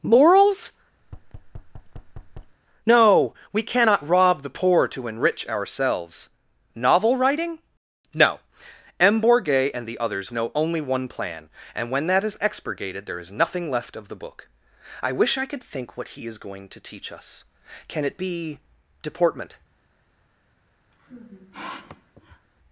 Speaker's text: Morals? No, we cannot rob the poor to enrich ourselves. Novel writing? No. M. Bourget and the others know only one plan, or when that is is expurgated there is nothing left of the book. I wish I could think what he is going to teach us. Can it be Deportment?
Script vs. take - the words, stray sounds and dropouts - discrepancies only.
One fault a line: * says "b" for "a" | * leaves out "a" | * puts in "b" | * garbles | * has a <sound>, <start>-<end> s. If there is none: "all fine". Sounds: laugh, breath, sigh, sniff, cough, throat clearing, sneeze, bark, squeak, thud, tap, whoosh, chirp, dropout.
* has a thud, 1.0-2.6 s
* says "and" for "or"
* leaves out "is"
* has a sniff, 20.9-22.5 s